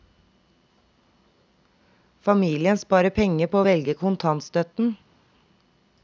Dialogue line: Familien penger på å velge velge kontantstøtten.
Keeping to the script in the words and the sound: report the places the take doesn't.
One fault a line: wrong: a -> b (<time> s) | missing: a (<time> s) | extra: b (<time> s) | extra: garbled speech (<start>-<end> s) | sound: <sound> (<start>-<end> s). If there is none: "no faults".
extra: sparer (2.8 s)
missing: velge (3.9 s)